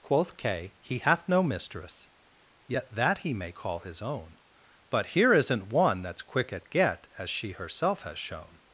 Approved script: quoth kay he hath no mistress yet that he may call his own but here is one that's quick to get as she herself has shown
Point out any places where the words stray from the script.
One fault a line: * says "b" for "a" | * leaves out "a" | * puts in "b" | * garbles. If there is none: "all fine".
* says "isn't" for "is"
* says "at" for "to"